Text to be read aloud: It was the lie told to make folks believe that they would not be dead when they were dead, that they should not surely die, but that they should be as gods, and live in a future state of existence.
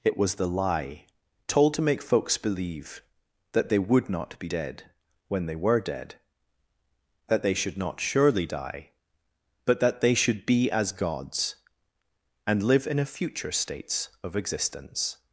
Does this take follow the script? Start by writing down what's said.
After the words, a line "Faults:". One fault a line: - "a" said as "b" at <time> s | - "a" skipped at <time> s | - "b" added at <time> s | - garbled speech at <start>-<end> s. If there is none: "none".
It was the lie told to make folks believe that they would not be dead when they were dead, that they should not surely die, but that they should be as gods, and live in a future states of existence.
Faults:
- "state" said as "states" at 13.5 s